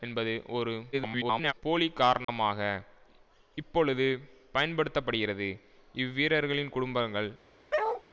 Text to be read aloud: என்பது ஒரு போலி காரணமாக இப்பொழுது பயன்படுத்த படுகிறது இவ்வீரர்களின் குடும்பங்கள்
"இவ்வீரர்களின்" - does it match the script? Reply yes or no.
yes